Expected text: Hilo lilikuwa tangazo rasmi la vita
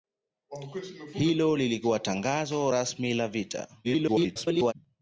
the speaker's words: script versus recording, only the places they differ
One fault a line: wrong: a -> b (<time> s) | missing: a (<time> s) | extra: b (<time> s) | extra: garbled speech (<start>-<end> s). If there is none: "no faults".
extra: garbled speech (3.8-4.7 s)